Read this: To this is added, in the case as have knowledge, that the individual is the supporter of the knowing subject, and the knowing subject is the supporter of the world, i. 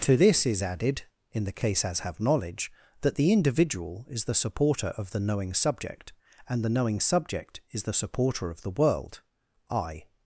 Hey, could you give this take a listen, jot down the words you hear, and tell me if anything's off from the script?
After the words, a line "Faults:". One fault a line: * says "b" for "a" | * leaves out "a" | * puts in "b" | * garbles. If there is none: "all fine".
To this is added, in the case as have knowledge, that the individual is the supporter of the knowing subject, and the knowing subject is the supporter of the world, i.
Faults:
all fine